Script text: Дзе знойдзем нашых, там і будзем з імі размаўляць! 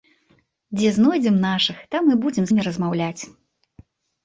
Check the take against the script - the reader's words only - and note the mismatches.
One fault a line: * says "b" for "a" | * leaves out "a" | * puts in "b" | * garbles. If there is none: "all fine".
* leaves out "з"